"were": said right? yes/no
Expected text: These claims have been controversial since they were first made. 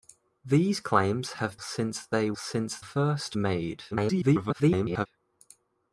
no